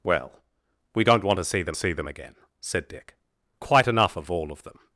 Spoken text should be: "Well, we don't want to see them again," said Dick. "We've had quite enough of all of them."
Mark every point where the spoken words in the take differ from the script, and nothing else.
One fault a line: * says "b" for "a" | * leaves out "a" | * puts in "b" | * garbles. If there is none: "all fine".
* puts in "see them"
* leaves out "We've had"